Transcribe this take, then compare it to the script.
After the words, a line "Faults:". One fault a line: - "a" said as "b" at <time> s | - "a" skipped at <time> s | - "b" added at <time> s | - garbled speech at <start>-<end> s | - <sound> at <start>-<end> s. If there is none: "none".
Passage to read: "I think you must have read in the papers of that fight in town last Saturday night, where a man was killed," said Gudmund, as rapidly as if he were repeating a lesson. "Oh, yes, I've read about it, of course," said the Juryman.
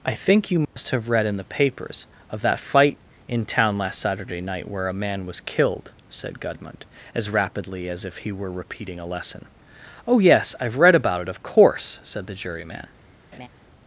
"I think you must have read in the papers of that fight in town last Saturday night, where a man was killed," said Gudmund, as rapidly as if he were repeating a lesson. "Oh, yes, I've read about it, of course," said the Juryman.
Faults:
- dropout at 0.6-0.8 s
- laugh at 13.3-13.5 s